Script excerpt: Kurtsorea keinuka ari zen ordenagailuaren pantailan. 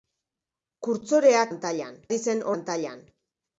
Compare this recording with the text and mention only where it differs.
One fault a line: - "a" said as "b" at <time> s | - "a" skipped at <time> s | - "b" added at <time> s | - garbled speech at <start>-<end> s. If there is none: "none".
- "keinuka" said as "pantailan" at 1.5 s
- "ordenagailuaren" skipped at 2.5 s